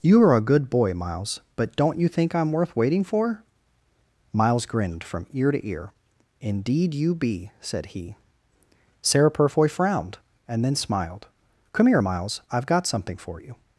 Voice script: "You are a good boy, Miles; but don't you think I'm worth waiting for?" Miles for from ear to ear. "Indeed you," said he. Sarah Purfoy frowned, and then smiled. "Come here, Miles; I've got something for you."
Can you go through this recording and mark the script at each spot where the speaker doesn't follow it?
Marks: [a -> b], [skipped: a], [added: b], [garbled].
"You are a good boy, Miles; but don't you think I'm worth waiting for?" Miles [for -> grinned] from ear to ear. "Indeed you," [added: be] said he. Sarah Purfoy frowned, and then smiled. "Come here, Miles; I've got something for you."